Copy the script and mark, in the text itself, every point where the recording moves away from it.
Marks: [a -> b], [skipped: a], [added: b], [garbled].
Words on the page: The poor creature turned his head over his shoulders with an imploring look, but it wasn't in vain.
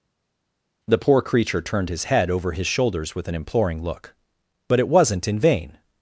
The poor creature turned his head over his shoulders with an imploring look, but it wasn't in vain.